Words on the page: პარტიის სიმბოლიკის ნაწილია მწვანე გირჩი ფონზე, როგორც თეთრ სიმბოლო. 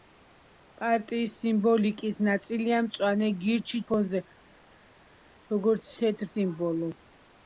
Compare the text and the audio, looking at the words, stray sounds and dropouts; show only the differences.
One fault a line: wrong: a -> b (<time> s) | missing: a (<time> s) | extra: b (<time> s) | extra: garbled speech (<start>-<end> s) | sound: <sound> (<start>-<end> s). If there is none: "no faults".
no faults